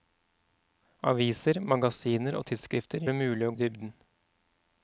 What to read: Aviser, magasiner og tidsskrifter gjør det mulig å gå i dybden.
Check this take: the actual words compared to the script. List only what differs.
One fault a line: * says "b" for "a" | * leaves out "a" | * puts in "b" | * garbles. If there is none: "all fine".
* leaves out "gjør"
* leaves out "gå"